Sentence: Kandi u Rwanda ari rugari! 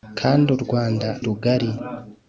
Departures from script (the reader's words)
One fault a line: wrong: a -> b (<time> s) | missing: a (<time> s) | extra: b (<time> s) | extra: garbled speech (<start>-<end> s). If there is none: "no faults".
missing: ari (1.1 s)